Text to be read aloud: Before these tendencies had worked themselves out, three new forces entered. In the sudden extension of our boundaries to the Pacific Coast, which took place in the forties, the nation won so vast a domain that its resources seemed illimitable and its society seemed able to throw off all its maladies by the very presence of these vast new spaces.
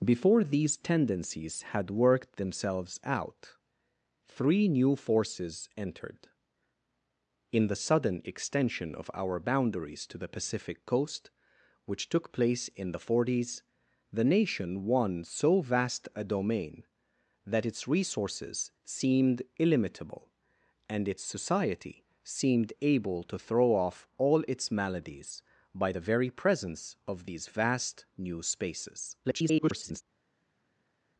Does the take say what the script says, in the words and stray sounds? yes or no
no